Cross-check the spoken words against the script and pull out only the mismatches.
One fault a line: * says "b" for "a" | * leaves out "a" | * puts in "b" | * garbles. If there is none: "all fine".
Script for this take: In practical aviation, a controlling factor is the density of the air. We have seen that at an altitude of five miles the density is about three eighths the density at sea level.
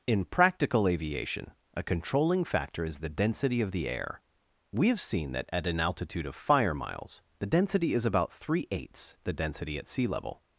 * says "fire" for "five"